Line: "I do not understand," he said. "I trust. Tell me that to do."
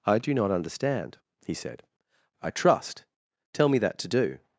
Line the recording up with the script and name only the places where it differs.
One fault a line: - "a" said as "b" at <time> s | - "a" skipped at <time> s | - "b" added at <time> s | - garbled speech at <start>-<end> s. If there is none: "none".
none